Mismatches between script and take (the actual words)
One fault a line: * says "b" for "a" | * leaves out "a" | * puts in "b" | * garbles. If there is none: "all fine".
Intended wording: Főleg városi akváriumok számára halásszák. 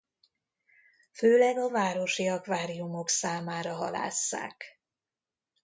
* puts in "a"